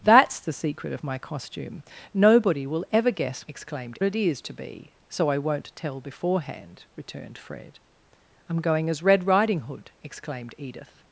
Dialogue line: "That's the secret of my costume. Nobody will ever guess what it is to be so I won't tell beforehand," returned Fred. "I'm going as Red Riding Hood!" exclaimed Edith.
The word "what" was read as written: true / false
false